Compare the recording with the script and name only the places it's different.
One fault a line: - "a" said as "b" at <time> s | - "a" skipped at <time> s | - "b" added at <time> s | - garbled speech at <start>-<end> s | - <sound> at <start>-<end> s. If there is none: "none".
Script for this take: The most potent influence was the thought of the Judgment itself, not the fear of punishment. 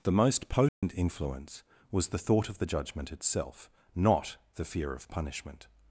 - dropout at 0.7-0.8 s